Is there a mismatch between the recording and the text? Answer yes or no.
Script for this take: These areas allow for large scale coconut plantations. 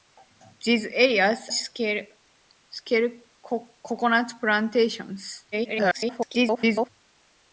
yes